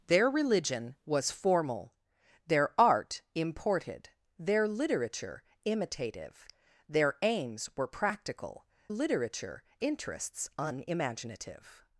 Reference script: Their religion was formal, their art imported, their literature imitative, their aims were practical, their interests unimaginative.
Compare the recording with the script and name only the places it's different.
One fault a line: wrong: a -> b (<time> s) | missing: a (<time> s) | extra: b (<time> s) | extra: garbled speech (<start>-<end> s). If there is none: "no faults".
wrong: their -> literature (8.9 s)